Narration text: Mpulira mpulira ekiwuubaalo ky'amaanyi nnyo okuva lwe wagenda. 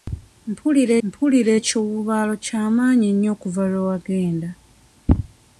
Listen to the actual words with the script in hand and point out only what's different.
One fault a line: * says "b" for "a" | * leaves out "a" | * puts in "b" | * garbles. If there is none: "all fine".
all fine